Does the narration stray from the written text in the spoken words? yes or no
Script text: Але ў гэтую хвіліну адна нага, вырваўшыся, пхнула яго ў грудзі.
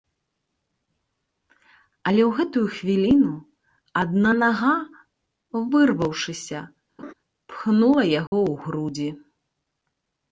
no